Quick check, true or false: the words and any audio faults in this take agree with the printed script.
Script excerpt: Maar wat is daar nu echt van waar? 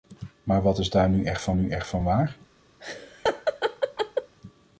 false